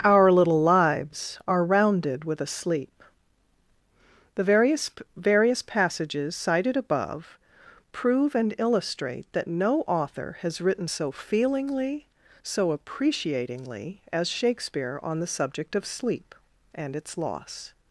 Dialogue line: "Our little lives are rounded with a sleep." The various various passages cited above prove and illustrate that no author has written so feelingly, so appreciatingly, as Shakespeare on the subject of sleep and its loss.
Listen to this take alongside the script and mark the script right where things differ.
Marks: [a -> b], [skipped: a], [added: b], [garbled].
"Our little lives are rounded with a sleep." The various various passages cited above prove and illustrate that no author has written so feelingly, so appreciatingly, as Shakespeare on the subject of sleep and its loss.